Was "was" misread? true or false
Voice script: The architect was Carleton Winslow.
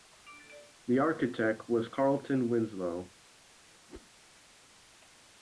false